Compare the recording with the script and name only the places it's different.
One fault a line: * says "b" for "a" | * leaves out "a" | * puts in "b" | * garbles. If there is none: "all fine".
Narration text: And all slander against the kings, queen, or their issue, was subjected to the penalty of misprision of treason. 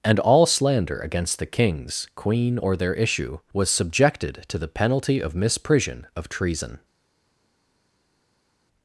all fine